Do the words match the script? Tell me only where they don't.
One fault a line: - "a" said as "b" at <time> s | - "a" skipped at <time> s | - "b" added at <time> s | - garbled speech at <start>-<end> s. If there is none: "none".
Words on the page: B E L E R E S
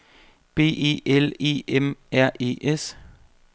- "M" added at 1.7 s